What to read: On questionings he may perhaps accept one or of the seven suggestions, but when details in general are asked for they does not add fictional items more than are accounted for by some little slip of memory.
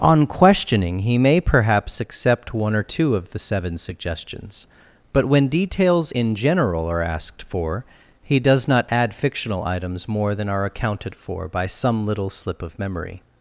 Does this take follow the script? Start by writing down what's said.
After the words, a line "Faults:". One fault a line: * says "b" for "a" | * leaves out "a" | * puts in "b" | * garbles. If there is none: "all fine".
On questioning he may perhaps accept one or two of the seven suggestions, but when details in general are asked for he does not add fictional items more than are accounted for by some little slip of memory.
Faults:
* says "questioning" for "questionings"
* puts in "two"
* says "he" for "they"